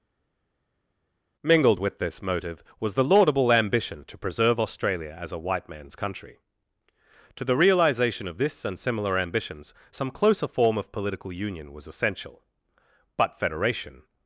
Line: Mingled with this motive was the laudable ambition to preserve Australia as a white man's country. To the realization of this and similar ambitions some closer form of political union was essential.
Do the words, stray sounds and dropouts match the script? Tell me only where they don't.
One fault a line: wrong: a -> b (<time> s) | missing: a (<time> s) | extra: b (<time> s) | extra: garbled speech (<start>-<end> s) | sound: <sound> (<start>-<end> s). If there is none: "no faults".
extra: But Federation (13.2 s)